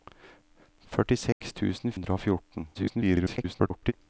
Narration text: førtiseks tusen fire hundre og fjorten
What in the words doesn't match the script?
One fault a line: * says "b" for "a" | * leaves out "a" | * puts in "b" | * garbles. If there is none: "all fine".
* leaves out "fire"
* garbles